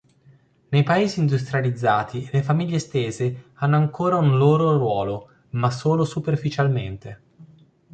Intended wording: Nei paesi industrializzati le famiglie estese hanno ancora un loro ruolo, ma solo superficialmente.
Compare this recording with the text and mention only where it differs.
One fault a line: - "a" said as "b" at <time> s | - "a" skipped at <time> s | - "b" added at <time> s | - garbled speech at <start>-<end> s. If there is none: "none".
none